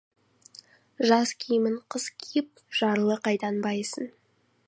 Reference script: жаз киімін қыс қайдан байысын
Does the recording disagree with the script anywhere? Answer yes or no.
yes